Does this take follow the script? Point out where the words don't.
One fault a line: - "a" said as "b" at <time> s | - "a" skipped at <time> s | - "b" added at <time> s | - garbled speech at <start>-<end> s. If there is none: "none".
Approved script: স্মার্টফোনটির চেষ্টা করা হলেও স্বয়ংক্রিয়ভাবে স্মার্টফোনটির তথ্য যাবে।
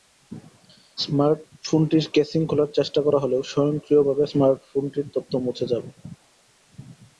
- "কেসিং খোলার" added at 2.1 s
- "মুছে" added at 5.5 s